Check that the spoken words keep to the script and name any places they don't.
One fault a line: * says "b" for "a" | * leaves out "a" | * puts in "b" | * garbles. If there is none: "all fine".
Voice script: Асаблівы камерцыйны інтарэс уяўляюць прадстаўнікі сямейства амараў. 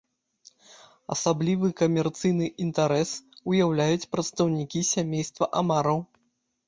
all fine